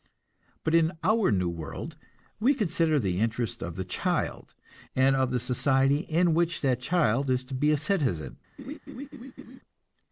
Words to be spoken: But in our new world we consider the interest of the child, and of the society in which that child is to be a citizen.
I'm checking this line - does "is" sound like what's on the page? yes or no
yes